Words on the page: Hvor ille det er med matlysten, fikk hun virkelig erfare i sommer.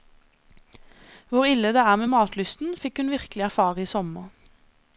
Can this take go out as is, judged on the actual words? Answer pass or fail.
pass